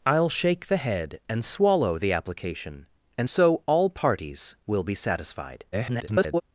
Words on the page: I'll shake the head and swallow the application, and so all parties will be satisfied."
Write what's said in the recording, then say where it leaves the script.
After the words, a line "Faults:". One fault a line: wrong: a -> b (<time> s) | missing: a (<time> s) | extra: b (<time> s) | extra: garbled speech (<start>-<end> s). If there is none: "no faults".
I'll shake the head and swallow the application, and so all parties will be satisfied." [garbled]
Faults:
extra: garbled speech (5.7-6.4 s)